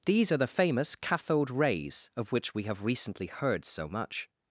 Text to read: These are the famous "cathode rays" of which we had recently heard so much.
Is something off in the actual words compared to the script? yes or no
yes